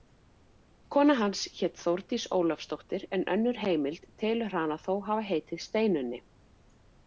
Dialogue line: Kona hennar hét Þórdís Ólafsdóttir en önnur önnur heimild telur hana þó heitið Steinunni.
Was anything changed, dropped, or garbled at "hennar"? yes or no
yes